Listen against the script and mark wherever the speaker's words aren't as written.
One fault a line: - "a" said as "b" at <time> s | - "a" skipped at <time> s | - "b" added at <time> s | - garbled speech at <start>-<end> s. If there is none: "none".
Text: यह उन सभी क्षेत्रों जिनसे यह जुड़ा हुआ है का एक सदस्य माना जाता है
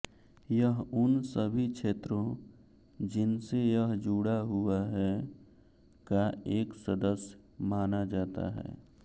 none